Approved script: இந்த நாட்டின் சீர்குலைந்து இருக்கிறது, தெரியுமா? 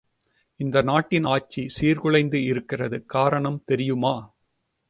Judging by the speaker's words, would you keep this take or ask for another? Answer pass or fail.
fail